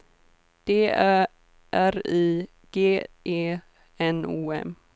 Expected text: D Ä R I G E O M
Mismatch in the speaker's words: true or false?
true